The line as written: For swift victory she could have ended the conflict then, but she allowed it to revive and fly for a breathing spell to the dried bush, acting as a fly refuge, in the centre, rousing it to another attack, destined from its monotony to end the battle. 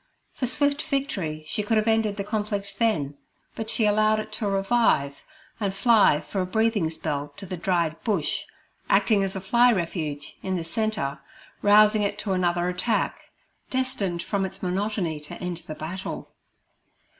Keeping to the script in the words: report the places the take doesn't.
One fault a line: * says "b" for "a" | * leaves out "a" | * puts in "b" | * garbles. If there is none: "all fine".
all fine